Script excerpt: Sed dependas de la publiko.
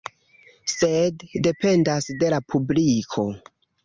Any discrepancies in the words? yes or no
no